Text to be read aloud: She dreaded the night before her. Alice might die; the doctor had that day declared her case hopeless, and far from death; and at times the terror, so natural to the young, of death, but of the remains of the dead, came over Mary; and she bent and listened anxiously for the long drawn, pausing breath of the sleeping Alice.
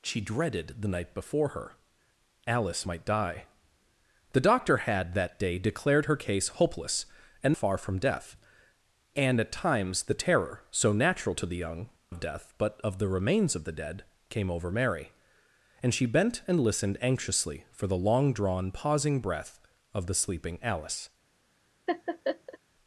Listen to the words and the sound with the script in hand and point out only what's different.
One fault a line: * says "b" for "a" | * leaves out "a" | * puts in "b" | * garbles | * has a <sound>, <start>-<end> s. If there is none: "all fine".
* has a laugh, 21.9-22.6 s